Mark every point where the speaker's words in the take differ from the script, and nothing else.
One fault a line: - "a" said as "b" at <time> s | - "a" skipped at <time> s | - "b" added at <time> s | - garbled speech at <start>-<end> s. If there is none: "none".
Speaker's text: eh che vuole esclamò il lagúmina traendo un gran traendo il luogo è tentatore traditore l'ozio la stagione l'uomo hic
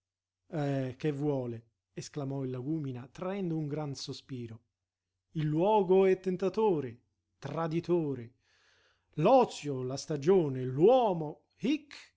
- "traendo" said as "sospiro" at 4.0 s